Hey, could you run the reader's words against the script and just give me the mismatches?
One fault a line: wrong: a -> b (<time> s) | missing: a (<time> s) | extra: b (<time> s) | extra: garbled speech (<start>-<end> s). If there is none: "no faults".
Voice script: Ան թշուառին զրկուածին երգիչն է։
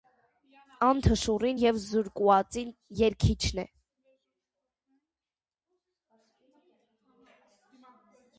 extra: եւ (1.6 s)